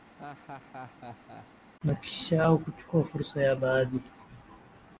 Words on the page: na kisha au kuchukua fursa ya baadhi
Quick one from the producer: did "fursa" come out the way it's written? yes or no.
yes